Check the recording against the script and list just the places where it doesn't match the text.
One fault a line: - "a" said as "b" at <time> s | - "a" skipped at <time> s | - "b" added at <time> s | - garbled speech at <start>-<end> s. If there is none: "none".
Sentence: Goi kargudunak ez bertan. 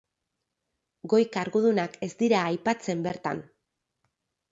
- "dira aipatzen" added at 2.2 s